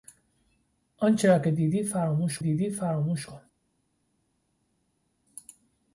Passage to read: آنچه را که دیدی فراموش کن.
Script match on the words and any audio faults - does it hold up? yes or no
no